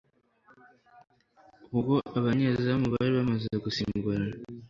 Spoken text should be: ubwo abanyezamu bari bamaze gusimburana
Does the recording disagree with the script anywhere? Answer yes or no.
no